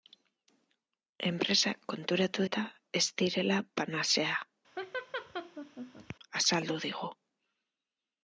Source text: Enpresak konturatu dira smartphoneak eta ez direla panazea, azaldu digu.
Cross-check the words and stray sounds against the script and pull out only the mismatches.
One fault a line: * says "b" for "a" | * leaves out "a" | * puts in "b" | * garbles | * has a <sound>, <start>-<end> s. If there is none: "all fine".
* leaves out "dira smartphoneak"
* has a laugh, 4.8-6.2 s